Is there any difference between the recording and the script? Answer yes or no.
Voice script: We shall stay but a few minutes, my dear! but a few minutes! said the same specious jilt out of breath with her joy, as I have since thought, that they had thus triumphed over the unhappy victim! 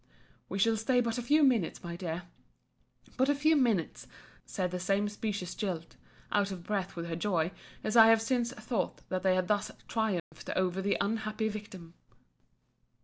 no